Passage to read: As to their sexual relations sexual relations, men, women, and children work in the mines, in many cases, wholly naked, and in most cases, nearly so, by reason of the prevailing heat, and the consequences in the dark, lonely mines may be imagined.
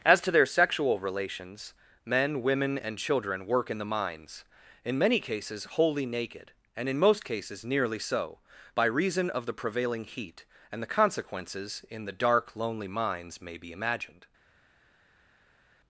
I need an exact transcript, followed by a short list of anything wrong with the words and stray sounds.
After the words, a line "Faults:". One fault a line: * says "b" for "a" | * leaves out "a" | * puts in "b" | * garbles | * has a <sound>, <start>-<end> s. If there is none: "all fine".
As to their sexual relations, men, women, and children work in the mines, in many cases, wholly naked, and in most cases, nearly so, by reason of the prevailing heat, and the consequences in the dark, lonely mines may be imagined.
Faults:
* leaves out "sexual relations"